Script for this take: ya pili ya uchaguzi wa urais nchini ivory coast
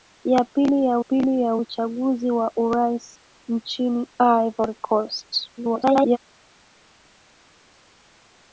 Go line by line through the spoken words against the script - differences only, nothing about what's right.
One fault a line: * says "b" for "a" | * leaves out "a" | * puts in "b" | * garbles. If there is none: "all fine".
* puts in "pili ya"
* garbles